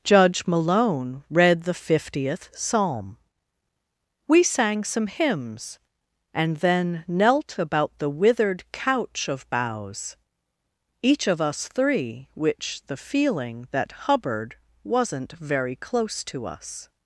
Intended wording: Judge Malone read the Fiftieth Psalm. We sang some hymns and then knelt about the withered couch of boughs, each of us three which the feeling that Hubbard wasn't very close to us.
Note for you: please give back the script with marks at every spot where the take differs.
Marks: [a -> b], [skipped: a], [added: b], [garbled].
Judge Malone read the Fiftieth Psalm. We sang some hymns and then knelt about the withered couch of boughs, each of us three which the feeling that Hubbard wasn't very close to us.